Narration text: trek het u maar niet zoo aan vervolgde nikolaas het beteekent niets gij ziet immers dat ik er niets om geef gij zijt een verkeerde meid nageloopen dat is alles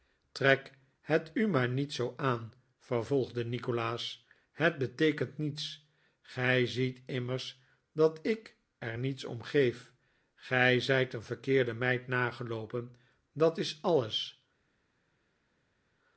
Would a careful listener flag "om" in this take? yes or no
no